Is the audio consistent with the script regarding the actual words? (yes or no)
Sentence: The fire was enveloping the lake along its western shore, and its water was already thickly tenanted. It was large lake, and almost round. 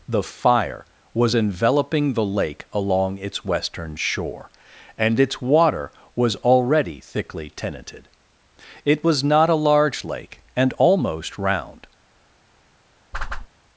no